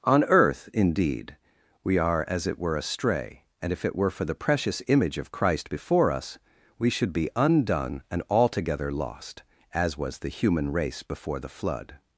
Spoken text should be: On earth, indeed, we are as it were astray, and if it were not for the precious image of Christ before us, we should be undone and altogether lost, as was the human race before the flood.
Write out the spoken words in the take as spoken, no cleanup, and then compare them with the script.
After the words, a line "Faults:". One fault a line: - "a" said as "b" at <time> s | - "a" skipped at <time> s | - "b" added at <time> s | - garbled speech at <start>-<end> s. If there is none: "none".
On earth, indeed, we are as it were astray, and if it were for the precious image of Christ before us, we should be undone and altogether lost, as was the human race before the flood.
Faults:
- "not" skipped at 4.1 s